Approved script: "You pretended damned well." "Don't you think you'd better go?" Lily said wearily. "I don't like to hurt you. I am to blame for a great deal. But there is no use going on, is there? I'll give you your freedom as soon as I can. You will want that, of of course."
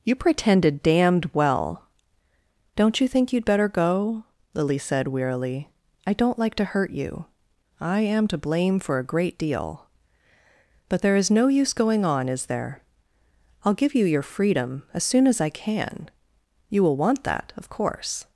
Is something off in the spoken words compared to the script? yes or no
yes